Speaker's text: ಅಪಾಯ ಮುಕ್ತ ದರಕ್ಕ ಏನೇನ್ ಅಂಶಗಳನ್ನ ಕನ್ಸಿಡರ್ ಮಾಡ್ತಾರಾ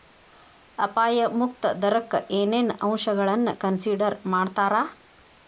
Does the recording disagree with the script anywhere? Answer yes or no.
no